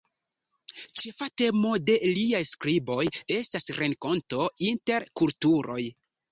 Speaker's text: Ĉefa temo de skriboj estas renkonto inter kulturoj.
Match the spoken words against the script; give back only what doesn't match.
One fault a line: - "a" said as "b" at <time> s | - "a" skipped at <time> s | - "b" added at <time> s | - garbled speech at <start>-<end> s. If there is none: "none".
- "liaj" added at 2.2 s